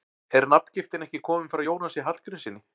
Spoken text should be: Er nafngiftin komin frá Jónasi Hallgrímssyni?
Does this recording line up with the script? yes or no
no